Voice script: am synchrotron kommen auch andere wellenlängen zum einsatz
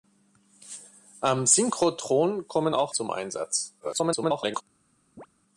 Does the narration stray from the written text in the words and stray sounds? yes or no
yes